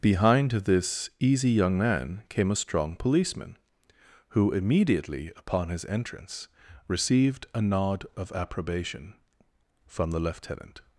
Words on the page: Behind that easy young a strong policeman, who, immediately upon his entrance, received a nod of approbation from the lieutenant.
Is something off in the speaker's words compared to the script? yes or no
yes